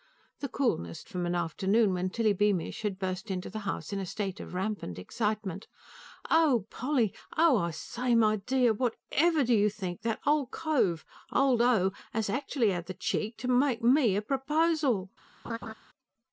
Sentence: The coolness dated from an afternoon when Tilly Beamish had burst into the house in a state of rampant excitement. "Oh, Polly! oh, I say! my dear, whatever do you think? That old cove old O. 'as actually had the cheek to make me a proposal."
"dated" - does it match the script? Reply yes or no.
no